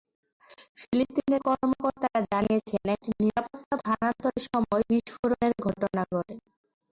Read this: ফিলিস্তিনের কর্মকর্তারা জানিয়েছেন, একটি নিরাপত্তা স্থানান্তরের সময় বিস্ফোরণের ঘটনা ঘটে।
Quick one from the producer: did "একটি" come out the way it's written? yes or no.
yes